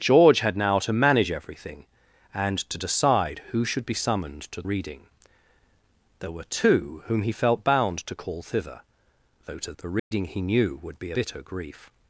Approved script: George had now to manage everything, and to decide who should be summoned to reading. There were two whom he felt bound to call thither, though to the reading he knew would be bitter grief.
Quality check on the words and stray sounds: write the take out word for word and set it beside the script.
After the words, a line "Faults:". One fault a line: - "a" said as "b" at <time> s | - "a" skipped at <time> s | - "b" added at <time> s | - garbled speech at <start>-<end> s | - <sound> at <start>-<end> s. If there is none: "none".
George had now to manage everything, and to decide who should be summoned to reading. There were two whom he felt bound to call thither, though to the reading he knew would be bitter grief.
Faults:
- dropout at 10.0-10.1 s